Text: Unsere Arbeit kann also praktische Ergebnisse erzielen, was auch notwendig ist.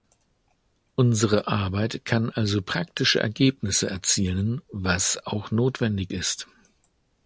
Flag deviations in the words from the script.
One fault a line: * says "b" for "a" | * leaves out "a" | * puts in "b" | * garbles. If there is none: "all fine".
all fine